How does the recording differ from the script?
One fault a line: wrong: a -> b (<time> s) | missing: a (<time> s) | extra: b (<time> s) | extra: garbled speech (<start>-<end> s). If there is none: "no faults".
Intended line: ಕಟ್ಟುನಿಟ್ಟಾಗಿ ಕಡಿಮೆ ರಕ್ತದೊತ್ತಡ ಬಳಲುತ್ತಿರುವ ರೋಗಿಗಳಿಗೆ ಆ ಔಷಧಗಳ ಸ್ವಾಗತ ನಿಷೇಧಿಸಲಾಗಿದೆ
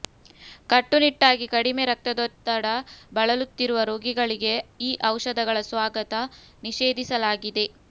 wrong: ಆ -> ಈ (4.8 s)